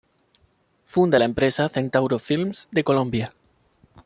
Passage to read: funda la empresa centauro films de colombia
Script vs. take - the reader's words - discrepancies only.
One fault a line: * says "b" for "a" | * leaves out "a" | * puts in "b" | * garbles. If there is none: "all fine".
all fine